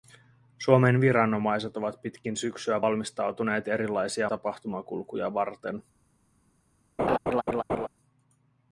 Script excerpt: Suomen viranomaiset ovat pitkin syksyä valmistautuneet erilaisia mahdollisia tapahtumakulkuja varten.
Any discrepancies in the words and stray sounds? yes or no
yes